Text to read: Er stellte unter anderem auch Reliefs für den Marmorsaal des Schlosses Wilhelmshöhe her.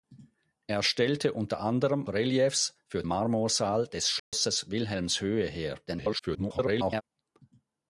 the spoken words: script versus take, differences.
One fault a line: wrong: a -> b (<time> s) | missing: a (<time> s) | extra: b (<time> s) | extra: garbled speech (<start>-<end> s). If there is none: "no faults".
missing: auch (2.1 s)
missing: den (3.0 s)
extra: garbled speech (5.9-7.0 s)